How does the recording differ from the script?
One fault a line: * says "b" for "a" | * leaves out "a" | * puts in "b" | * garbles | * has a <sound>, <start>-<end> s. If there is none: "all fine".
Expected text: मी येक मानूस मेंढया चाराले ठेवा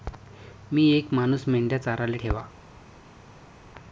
all fine